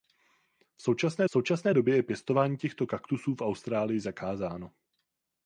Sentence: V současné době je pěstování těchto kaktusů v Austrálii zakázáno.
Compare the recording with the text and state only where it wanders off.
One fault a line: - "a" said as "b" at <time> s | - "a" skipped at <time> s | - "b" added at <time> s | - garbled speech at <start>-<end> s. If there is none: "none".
- "současné" added at 1.3 s